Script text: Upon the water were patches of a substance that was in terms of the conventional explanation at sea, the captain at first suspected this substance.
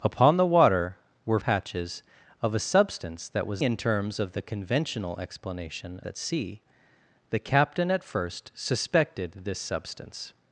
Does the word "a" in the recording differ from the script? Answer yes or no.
no